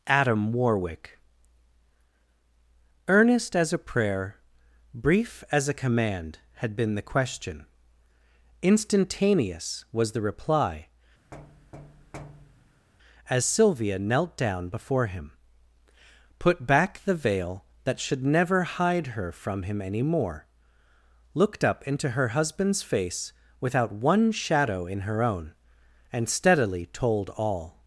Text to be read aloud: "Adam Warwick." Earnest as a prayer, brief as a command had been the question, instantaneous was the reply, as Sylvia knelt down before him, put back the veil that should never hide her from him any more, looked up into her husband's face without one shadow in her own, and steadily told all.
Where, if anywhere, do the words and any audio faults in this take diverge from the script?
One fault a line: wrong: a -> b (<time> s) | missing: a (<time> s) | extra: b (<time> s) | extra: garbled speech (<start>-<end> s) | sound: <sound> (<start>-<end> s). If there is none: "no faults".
sound: thud (11.3-12.9 s)